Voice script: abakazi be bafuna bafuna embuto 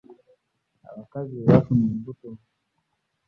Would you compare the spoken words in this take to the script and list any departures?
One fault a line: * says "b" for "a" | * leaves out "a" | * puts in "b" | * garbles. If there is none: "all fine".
* leaves out "bafuna"